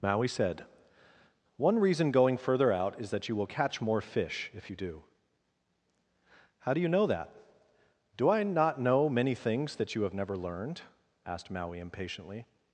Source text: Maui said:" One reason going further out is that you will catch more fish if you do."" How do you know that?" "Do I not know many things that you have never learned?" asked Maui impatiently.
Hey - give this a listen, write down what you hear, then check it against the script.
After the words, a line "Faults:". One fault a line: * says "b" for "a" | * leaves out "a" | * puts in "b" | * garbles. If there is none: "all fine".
Maui said:" One reason going further out is that you will catch more fish if you do."" How do you know that?" "Do I not know many things that you have never learned?" asked Maui impatiently.
Faults:
all fine